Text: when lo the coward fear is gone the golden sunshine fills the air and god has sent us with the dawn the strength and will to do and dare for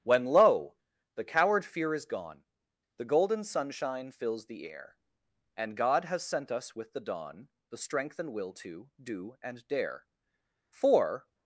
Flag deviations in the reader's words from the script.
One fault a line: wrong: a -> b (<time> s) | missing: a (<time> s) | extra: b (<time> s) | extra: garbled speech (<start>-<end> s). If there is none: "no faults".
no faults